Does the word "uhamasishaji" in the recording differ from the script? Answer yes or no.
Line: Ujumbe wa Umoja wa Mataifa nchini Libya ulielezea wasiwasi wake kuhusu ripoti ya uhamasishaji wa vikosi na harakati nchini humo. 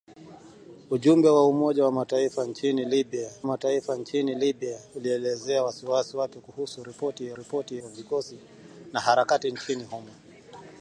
yes